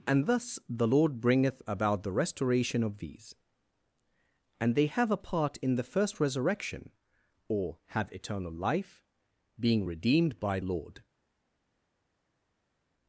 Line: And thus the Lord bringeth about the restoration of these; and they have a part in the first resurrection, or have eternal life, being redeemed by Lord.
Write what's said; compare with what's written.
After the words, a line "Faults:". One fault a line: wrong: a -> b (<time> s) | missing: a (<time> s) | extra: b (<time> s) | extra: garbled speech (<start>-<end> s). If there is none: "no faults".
And thus the Lord bringeth about the restoration of these; and they have a part in the first resurrection, or have eternal life, being redeemed by Lord.
Faults:
no faults